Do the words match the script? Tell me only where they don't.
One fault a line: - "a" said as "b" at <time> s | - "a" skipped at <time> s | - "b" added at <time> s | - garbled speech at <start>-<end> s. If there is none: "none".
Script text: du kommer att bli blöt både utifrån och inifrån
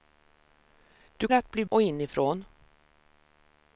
- "kommer" skipped at 1.3 s
- "blöt både utifrån" skipped at 1.6 s